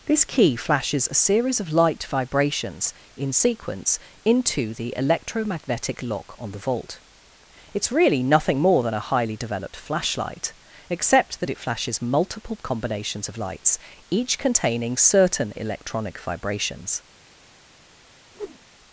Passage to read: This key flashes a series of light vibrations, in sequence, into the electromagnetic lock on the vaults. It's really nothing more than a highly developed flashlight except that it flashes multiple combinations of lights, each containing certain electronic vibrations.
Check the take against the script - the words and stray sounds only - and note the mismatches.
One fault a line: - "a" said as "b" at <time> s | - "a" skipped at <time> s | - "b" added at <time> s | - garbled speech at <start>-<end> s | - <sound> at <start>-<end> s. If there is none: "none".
- "vaults" said as "vault" at 6.6 s
- whoosh at 18.3-18.6 s